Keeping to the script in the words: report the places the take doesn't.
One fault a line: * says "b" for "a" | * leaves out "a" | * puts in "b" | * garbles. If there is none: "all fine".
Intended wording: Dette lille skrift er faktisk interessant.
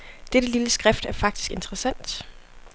all fine